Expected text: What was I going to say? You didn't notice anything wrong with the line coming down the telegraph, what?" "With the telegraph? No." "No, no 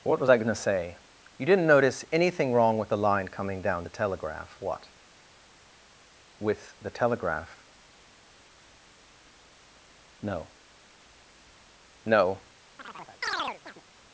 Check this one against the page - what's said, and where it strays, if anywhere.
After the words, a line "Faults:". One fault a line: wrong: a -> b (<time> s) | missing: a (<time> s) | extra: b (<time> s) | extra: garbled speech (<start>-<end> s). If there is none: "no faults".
What was I going to say? You didn't notice anything wrong with the line coming down the telegraph, what?" "With the telegraph? No." "No,
Faults:
missing: no (12.4 s)